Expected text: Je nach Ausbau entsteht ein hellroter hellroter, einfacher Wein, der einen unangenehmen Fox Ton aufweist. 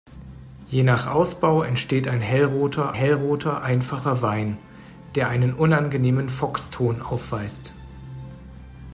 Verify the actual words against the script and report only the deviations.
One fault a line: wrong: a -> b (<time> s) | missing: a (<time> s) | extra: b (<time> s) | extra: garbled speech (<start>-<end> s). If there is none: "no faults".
no faults